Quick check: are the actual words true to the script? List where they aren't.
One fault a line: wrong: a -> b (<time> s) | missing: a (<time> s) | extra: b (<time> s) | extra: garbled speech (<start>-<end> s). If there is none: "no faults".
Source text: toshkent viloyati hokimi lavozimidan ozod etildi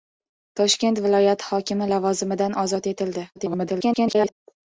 extra: garbled speech (3.4-4.3 s)